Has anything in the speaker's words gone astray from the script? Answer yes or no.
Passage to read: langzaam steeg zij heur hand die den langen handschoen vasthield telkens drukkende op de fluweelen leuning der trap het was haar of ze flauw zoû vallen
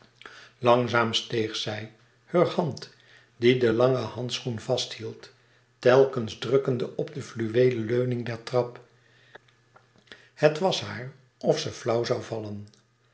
no